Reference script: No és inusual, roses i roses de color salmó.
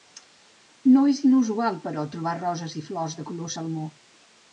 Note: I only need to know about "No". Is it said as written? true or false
true